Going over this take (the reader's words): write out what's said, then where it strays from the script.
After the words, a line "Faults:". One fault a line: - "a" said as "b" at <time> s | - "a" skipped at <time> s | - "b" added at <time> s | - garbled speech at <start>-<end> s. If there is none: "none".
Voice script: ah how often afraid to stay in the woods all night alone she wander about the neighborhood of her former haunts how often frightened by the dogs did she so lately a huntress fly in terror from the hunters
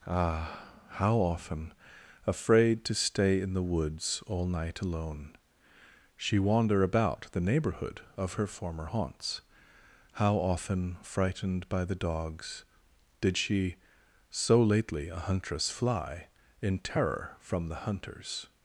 ah how often afraid to stay in the woods all night alone she wander about the neighborhood of her former haunts how often frightened by the dogs did she so lately a huntress fly in terror from the hunters
Faults:
none